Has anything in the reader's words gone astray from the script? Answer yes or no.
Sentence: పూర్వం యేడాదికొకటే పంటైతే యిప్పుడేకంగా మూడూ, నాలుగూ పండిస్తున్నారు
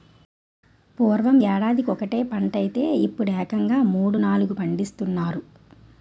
no